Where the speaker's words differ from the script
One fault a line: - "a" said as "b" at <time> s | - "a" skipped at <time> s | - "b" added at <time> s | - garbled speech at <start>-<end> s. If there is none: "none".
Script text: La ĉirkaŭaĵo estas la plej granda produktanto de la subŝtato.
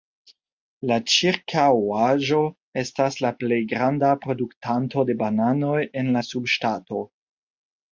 - "bananoj en" added at 5.2 s